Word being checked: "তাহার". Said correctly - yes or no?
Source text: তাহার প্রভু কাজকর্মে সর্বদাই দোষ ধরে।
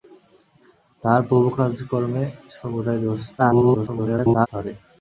yes